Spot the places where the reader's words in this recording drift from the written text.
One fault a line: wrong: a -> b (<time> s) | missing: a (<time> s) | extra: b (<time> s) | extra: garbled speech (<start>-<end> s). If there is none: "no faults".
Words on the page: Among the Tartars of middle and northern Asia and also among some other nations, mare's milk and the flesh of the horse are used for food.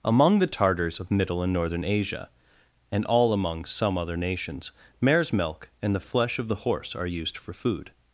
wrong: also -> all (3.0 s)